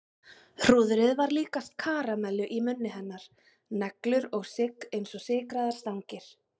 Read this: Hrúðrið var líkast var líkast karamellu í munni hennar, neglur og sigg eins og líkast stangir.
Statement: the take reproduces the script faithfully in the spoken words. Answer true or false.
false